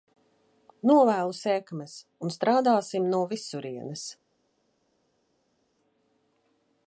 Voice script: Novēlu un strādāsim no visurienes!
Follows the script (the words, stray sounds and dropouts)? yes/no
no